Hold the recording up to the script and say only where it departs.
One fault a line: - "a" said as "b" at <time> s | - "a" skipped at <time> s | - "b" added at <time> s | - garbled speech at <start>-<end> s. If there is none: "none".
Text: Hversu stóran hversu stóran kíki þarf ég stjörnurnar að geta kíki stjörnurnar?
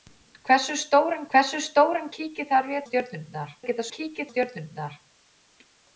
none